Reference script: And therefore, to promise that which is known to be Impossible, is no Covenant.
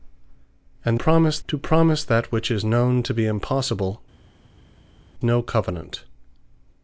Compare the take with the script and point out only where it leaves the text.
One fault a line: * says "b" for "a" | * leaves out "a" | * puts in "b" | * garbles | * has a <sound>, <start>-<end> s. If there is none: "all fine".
* says "promise" for "therefore"
* leaves out "is"